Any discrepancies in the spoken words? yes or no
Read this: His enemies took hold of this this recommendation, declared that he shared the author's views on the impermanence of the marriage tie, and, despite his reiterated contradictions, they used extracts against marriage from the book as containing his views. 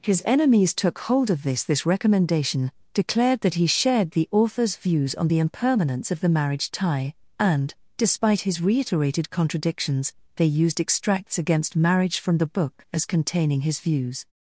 no